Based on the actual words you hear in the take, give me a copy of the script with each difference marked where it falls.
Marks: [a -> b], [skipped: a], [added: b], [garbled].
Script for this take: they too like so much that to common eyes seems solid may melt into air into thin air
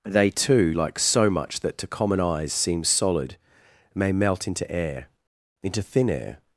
they too like so much that to common eyes seems solid may melt into air into thin air